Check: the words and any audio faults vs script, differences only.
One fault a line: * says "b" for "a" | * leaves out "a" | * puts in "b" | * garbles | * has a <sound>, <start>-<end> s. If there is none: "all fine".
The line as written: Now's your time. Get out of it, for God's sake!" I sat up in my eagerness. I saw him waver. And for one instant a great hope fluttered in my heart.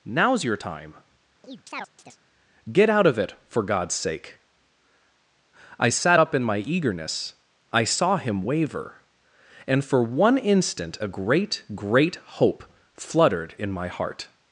* has a chirp, 1.4-2.2 s
* puts in "great"